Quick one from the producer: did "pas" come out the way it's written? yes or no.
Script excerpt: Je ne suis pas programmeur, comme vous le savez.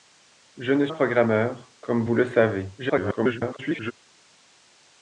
no